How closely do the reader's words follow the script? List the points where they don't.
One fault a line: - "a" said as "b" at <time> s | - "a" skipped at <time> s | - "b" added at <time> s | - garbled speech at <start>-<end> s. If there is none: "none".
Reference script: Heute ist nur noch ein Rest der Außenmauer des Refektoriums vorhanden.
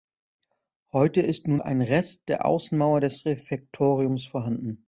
- "noch" skipped at 1.6 s